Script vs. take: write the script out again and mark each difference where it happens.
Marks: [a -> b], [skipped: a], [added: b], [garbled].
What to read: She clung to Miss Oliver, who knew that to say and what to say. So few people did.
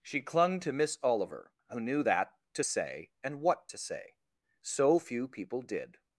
She clung to Miss Oliver, who knew that to say and what to say. So few people did.